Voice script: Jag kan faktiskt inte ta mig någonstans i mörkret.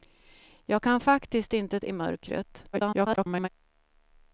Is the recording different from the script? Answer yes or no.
yes